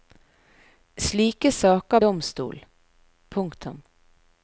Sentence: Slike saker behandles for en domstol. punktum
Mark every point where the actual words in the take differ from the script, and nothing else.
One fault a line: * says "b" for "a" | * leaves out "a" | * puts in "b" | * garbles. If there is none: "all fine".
* leaves out "behandles for en"